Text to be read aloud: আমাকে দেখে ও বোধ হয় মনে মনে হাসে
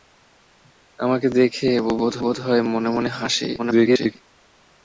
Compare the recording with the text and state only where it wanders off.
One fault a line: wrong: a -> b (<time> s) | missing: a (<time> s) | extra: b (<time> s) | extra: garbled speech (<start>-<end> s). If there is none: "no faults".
extra: বোধ (2.2 s)
extra: garbled speech (3.6-4.2 s)